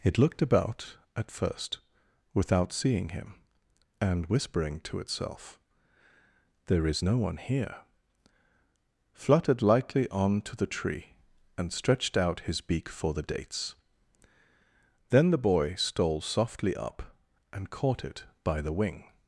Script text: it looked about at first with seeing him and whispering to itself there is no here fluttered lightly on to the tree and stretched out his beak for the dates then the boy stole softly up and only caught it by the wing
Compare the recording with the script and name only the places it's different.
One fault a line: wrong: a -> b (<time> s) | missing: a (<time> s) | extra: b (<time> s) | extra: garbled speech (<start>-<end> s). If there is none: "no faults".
wrong: with -> without (2.3 s)
extra: one (7.2 s)
missing: only (17.7 s)